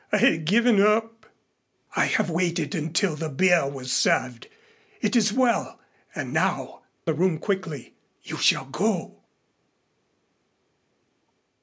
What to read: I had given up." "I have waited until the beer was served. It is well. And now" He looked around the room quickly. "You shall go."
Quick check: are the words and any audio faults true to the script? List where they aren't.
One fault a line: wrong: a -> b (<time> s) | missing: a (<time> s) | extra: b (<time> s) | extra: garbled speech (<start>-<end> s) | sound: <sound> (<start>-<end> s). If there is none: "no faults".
missing: He looked around (6.8 s)